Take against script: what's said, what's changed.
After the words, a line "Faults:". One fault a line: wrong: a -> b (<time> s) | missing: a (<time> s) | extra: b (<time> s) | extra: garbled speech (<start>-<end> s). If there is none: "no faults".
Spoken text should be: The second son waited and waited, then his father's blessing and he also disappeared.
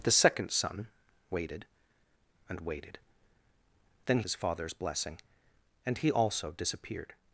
The second son waited and waited, then his father's blessing and he also disappeared.
Faults:
no faults